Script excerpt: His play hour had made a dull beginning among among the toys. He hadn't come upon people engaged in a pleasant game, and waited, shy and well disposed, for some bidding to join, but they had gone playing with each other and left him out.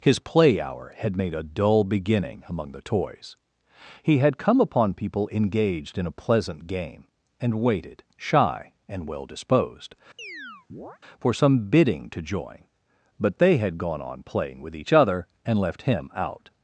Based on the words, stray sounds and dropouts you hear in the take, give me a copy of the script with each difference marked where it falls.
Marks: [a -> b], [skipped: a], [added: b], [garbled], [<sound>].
His play hour had made a dull beginning among [skipped: among] the toys. He [hadn't -> had] come upon people engaged in a pleasant game, and waited, shy and well disposed, [chirp] for some bidding to join, but they had gone [added: on] playing with each other and left him out.